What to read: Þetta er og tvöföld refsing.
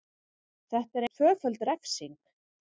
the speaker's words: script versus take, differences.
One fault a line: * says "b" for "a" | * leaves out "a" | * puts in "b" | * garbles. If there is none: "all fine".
all fine